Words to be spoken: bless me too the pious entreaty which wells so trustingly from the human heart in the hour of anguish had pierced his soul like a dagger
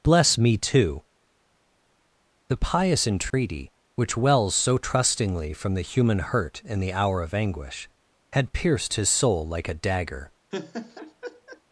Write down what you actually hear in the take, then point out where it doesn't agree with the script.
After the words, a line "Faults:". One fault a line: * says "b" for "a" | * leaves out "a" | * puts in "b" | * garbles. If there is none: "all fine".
bless me too the pious entreaty which wells so trustingly from the human hurt in the hour of anguish had pierced his soul like a dagger
Faults:
* says "hurt" for "heart"